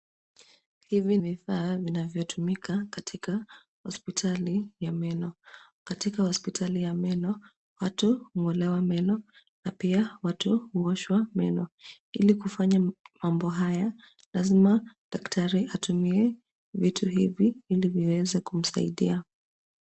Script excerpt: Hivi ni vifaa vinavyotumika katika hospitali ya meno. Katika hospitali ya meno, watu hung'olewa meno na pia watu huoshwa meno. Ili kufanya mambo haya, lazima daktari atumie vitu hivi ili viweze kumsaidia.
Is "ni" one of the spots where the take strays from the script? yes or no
yes